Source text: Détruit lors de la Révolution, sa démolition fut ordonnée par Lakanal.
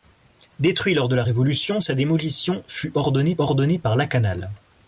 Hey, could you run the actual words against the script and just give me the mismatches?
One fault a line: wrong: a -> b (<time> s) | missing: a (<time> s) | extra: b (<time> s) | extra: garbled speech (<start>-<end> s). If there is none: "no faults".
extra: ordonnée (3.4 s)